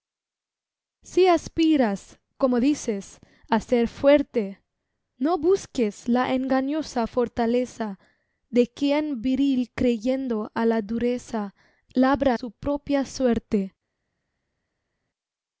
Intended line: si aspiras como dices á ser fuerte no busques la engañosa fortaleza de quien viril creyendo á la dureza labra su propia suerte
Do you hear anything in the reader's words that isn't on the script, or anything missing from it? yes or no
no